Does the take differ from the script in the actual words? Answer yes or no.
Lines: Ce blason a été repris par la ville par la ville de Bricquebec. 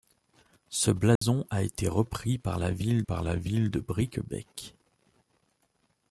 no